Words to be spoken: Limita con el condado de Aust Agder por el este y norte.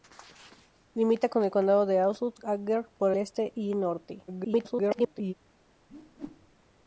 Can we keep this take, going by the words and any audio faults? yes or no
no